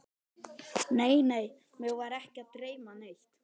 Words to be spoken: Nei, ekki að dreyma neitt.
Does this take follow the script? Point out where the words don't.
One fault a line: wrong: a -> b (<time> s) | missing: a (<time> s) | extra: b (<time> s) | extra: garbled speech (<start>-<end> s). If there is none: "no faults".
extra: nei mig var (1.3 s)